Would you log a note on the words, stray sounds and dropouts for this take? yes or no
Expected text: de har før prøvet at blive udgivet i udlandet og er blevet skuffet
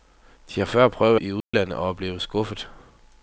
yes